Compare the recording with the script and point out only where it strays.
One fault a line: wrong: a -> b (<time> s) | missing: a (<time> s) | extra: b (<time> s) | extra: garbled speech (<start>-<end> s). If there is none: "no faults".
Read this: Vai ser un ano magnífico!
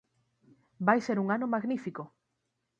no faults